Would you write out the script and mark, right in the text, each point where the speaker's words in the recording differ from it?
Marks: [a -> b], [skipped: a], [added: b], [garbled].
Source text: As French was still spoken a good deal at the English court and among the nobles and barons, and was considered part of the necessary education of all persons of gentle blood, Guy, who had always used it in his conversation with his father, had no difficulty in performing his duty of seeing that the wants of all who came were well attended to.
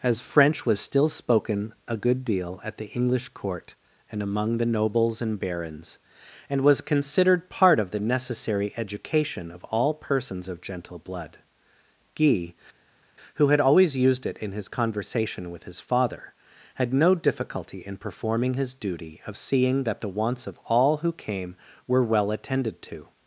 As French was still spoken a good deal at the English court and among the nobles and barons, and was considered part of the necessary education of all persons of gentle blood, Guy, who had always used it in his conversation with his father, had no difficulty in performing his duty of seeing that the wants of all who came were well attended to.